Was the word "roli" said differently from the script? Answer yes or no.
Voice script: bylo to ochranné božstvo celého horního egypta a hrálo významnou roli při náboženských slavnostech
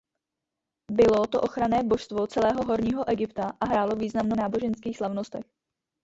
yes